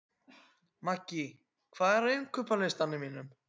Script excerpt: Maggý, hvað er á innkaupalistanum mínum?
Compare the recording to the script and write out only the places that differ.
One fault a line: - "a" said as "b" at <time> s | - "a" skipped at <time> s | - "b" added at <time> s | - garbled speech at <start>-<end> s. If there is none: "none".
none